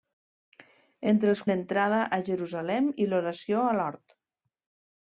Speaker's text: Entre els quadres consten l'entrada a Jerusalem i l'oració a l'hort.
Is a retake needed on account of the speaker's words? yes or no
yes